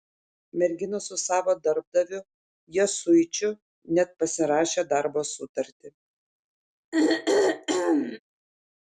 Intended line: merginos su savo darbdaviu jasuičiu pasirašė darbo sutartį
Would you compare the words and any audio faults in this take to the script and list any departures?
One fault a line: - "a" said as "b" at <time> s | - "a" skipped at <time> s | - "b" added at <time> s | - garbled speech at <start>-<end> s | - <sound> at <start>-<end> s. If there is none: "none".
- "net" added at 4.0 s
- throat clearing at 6.9-8.2 s